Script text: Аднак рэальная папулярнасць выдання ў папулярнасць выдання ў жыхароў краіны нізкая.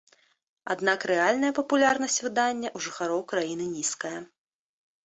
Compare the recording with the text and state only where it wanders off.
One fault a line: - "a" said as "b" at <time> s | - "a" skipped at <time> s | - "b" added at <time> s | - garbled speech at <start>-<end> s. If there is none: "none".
- "папулярнасць выдання ў" skipped at 2.9 s